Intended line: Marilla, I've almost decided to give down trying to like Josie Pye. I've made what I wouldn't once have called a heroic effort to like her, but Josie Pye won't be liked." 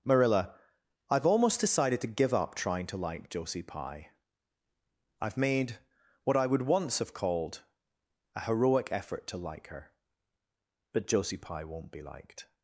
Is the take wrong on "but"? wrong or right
right